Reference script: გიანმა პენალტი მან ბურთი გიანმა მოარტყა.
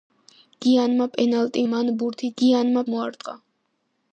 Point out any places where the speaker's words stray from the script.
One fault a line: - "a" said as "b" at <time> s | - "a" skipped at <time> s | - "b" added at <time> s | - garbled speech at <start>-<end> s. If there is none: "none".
none